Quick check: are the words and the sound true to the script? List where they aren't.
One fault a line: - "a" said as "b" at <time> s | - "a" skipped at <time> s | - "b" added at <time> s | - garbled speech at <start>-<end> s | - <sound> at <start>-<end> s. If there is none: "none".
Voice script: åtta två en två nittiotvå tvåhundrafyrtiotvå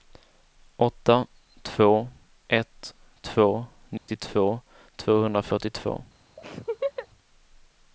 - "en" said as "ett" at 2.5 s
- dropout at 4.0-4.1 s
- laugh at 6.4-7.1 s